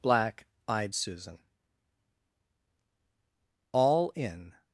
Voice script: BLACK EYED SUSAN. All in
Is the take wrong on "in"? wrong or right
right